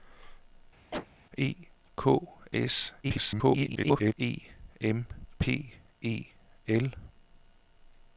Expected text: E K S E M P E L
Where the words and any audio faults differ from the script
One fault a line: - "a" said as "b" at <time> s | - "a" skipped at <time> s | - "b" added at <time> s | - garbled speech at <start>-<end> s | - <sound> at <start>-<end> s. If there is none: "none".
- cough at 0.9-1.1 s
- garbled speech at 3.0-4.1 s